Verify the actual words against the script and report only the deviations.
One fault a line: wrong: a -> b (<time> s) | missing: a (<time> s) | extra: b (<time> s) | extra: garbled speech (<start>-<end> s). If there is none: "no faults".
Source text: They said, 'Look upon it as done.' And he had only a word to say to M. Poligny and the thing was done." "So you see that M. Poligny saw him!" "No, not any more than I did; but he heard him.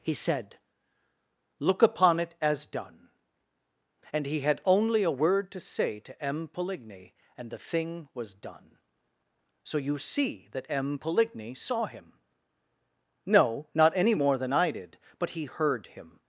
wrong: They -> He (0.0 s)